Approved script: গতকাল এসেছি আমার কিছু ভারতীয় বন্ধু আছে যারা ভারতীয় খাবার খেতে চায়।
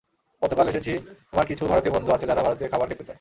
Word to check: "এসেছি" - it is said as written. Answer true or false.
true